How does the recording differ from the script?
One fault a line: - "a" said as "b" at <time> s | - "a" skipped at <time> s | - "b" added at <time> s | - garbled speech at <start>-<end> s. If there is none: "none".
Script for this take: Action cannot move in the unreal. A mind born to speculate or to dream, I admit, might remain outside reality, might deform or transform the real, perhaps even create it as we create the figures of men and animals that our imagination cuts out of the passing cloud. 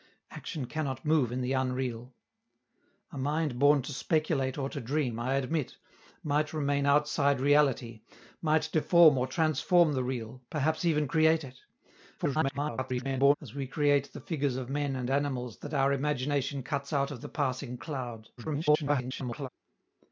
- garbled speech at 12.2-13.3 s
- garbled speech at 18.4-19.5 s